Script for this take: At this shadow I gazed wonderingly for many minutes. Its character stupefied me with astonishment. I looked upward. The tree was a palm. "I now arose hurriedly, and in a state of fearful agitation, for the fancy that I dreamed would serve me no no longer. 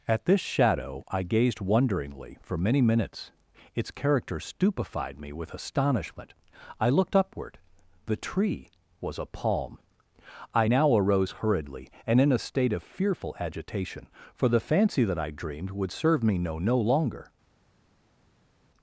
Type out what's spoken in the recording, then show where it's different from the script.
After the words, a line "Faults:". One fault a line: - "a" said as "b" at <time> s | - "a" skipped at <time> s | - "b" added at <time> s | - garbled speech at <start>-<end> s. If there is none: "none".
At this shadow I gazed wonderingly for many minutes. Its character stupefied me with astonishment. I looked upward. The tree was a palm. "I now arose hurriedly, and in a state of fearful agitation, for the fancy that I dreamed would serve me no no longer.
Faults:
none